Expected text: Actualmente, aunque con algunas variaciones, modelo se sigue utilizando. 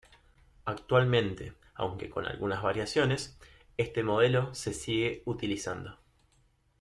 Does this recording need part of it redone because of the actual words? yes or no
yes